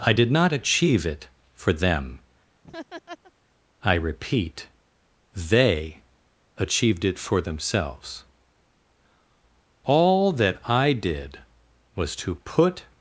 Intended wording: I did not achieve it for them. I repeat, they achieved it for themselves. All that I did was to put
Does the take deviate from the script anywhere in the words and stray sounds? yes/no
yes